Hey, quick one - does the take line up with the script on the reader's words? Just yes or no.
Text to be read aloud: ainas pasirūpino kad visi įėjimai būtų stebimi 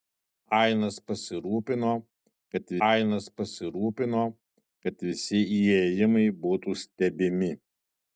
no